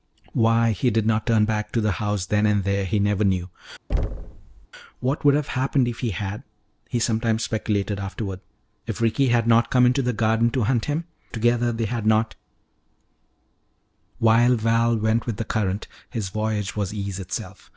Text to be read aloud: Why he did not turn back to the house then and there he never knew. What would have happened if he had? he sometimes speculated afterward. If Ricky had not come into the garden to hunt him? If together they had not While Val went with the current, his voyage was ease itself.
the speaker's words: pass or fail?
fail